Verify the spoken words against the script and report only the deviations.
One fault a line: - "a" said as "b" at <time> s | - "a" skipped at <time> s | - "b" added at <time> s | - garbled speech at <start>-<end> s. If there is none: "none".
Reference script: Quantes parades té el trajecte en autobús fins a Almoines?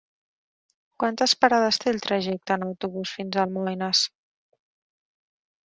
none